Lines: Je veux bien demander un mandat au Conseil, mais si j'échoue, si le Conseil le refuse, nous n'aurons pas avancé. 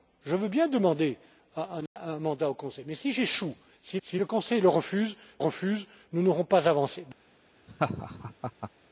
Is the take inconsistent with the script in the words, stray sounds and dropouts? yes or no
yes